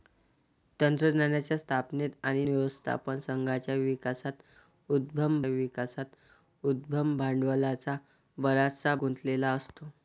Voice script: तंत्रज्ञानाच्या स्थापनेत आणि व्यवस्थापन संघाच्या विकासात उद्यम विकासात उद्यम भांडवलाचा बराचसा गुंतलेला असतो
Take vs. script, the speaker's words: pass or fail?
pass